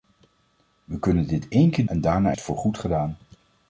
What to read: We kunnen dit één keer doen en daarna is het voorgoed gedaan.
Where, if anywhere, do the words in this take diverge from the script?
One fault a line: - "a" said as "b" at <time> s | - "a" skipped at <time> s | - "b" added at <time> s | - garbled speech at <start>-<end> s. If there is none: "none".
- "doen" skipped at 1.9 s
- "is" skipped at 2.3 s